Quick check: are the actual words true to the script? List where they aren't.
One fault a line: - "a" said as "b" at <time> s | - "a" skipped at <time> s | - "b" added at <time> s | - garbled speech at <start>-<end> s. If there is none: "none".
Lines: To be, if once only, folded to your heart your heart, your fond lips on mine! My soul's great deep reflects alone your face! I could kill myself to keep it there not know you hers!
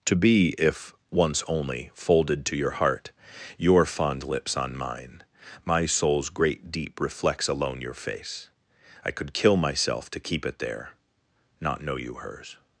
- "heart your" skipped at 3.9 s